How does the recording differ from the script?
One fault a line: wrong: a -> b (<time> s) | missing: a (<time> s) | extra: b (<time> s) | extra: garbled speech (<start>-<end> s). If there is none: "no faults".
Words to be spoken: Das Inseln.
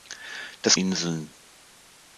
no faults